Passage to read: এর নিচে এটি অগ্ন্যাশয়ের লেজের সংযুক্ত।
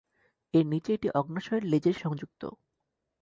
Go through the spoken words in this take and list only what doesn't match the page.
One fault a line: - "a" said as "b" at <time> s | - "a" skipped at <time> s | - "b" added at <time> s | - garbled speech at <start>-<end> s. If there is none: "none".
none